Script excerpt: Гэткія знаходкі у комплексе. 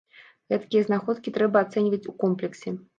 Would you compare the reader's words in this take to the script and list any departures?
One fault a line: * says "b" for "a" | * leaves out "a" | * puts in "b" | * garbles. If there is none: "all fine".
* puts in "трэба ацэньваць"